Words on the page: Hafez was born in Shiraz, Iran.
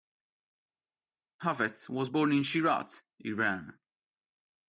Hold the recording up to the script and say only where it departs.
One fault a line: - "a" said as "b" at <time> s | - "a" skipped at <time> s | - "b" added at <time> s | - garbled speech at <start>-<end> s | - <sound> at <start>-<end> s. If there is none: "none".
none